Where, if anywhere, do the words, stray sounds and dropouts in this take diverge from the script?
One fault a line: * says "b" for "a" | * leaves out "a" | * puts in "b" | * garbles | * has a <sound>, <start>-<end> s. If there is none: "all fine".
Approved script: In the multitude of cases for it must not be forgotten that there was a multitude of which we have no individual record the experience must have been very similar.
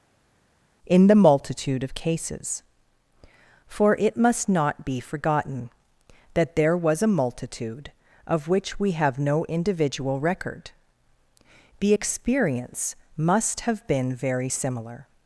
all fine